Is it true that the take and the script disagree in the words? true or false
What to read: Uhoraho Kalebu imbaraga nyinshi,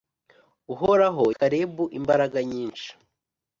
false